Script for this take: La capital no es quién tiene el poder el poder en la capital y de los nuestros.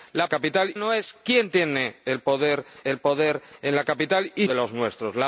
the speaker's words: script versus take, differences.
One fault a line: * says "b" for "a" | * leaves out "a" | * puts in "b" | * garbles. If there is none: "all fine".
all fine